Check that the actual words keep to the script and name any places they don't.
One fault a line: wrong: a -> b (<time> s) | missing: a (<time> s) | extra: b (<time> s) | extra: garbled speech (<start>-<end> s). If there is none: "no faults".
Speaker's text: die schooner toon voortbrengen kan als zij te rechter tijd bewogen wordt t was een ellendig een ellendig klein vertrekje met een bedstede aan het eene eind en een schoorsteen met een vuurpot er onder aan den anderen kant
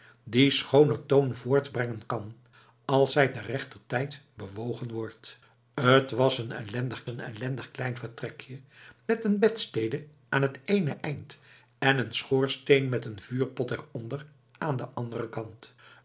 no faults